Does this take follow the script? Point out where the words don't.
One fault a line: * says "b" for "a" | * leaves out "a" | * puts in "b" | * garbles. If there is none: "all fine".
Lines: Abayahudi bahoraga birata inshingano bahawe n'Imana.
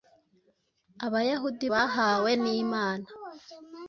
* leaves out "bahoraga birata inshingano"